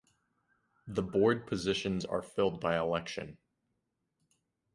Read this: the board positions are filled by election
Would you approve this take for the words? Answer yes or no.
yes